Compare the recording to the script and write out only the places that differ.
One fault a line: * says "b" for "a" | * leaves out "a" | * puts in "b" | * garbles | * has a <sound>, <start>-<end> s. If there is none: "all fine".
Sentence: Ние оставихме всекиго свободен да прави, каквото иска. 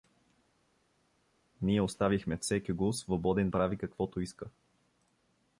* leaves out "да"